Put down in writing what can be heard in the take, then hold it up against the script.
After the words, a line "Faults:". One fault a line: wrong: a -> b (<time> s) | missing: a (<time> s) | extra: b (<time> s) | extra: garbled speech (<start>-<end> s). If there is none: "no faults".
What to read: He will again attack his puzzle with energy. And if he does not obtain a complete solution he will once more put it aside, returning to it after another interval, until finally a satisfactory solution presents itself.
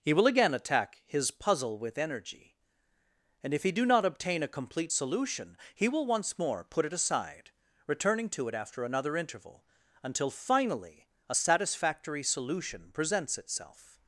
He will again attack his puzzle with energy. And if he do not obtain a complete solution he will once more put it aside, returning to it after another interval, until finally a satisfactory solution presents itself.
Faults:
wrong: does -> do (3.7 s)